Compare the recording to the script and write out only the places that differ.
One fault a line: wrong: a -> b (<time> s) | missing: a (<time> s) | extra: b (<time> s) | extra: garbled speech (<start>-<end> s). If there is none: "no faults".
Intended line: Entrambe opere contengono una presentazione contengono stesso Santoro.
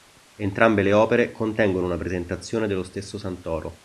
extra: le (0.8 s)
wrong: contengono -> dello (2.6 s)